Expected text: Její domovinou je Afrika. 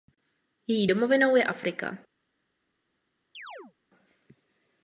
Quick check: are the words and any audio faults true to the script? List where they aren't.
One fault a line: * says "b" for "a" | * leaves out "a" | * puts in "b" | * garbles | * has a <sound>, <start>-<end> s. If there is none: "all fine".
* has a chirp, 3.3-3.7 s